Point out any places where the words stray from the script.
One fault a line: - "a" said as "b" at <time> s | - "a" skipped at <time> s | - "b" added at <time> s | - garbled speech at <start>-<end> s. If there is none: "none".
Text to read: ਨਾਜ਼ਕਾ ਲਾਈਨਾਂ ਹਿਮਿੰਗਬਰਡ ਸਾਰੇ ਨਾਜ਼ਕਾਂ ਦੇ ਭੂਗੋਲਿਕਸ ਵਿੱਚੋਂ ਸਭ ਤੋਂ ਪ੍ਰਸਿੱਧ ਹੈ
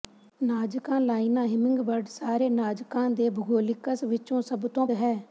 - "ਪ੍ਰਸਿੱਧ" skipped at 4.9 s